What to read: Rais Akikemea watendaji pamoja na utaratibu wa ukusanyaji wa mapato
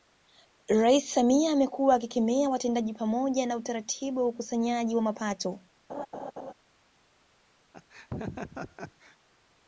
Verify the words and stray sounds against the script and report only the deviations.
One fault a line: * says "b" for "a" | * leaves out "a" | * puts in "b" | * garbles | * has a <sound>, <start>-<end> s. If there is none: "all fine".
* puts in "Samia amekuwa"
* has a laugh, 5.9-6.5 s
* has a laugh, 7.7-9.2 s